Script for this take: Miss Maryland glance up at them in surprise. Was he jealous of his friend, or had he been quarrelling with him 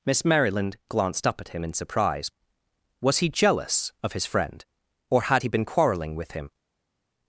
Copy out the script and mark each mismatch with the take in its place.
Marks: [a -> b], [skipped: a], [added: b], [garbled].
Miss Maryland [glance -> glanced] up at [them -> him] in surprise. Was he jealous of his friend, or had he been quarrelling with him